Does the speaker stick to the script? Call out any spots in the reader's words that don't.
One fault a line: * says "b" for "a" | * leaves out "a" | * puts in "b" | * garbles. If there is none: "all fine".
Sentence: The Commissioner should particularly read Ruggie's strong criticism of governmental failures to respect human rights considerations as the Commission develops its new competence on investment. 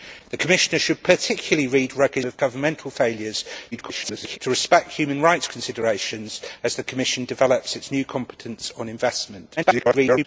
* leaves out "strong criticism"
* garbles
* garbles